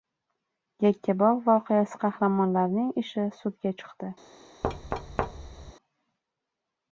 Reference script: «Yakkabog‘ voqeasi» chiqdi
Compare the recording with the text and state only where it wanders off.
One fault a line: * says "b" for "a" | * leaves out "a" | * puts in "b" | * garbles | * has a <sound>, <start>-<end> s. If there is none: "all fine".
* puts in "qahramonlarining ishi sudga"
* has a thud, 4.6-5.7 s